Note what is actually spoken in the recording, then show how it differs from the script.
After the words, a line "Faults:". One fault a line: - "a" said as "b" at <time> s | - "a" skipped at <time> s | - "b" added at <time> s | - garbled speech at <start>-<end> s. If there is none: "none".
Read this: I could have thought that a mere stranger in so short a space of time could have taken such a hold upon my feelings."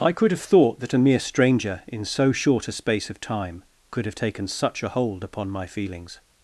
I could have thought that a mere stranger in so short a space of time could have taken such a hold upon my feelings."
Faults:
none